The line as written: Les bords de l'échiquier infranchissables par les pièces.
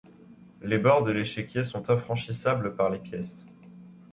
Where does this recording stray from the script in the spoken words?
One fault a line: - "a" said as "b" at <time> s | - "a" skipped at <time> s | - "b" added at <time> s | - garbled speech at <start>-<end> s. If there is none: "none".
- "sont" added at 1.6 s